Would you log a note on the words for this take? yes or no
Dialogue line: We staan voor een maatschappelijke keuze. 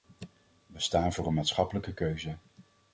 no